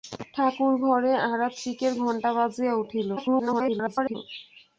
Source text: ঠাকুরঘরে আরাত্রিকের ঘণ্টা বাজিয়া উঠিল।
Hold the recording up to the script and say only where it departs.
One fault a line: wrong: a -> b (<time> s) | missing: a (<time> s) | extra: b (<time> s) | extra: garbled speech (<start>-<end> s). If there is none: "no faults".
extra: garbled speech (3.2-4.2 s)